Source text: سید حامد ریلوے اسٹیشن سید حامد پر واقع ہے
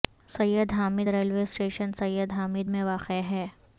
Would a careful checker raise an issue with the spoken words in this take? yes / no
yes